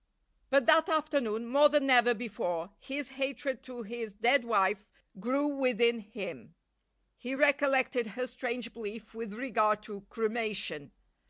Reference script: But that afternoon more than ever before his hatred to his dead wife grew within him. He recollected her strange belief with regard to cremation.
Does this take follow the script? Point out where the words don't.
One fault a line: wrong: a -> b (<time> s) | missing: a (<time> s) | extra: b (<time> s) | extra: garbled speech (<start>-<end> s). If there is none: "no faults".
no faults